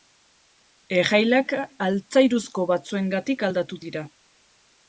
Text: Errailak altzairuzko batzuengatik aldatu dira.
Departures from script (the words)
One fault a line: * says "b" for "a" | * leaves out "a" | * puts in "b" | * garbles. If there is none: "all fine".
all fine